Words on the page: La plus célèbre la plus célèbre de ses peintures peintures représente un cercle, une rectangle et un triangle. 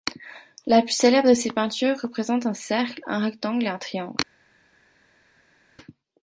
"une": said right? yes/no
no